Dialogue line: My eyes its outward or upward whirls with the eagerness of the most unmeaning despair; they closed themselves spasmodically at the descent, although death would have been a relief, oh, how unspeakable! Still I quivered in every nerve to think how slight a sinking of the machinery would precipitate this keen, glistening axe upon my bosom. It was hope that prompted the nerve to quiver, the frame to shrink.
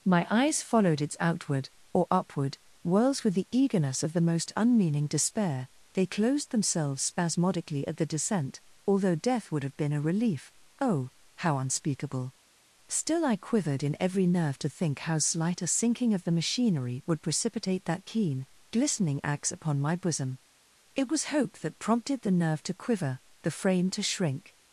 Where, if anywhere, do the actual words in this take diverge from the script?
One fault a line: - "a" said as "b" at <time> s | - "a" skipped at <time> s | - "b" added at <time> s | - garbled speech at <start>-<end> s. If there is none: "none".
- "followed" added at 0.6 s
- "this" said as "that" at 17.9 s